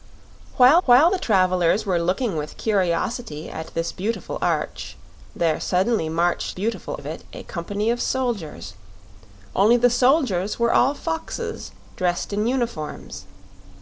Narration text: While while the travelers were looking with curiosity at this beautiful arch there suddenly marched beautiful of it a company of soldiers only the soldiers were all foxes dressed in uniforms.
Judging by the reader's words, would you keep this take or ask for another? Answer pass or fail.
pass